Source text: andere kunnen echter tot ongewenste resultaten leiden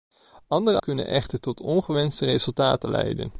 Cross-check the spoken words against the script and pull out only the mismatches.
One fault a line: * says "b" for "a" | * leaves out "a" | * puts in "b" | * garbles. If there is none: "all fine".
all fine